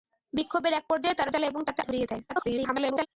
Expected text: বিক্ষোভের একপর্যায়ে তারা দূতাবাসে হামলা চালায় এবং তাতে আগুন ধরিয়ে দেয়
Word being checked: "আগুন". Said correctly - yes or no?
no